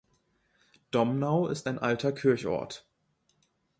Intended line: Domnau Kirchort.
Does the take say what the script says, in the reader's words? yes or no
no